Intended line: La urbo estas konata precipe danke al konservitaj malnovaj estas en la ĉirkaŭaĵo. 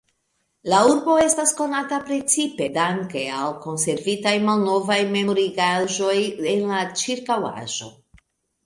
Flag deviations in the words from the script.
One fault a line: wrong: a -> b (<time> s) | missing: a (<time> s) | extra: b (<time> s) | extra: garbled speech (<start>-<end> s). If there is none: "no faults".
wrong: estas -> memorigaĵoj (5.2 s)